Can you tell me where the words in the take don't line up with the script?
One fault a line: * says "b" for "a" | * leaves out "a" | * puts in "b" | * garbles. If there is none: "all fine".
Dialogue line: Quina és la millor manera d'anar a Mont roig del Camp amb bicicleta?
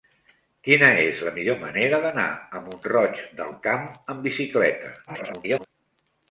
* garbles